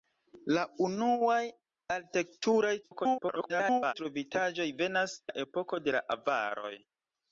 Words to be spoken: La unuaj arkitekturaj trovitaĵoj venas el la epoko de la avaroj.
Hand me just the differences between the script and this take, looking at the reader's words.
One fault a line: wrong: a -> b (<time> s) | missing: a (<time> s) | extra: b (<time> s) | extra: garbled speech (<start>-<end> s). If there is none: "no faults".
extra: garbled speech (2.8-3.9 s)
missing: el (5.2 s)